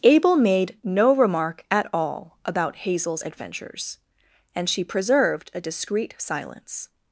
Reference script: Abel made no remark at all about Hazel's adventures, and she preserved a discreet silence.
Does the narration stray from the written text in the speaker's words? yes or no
no